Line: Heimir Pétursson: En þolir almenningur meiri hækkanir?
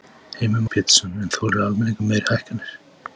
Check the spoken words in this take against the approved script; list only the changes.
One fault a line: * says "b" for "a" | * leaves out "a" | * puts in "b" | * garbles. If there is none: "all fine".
all fine